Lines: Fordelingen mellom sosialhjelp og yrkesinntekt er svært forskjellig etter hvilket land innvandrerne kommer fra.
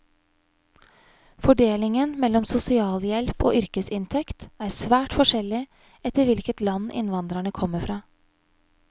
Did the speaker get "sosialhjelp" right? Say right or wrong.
right